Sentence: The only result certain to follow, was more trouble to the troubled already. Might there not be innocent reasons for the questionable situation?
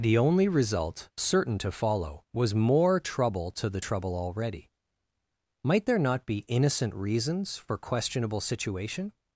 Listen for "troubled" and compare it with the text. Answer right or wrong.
wrong